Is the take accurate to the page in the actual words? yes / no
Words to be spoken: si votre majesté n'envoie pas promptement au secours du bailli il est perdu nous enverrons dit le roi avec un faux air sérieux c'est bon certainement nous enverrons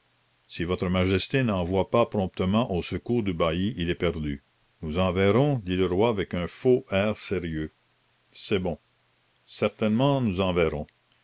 yes